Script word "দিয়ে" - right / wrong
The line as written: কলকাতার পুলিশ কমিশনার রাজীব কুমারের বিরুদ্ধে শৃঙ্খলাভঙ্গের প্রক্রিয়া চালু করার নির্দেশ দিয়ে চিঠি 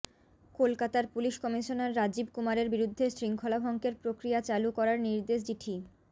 wrong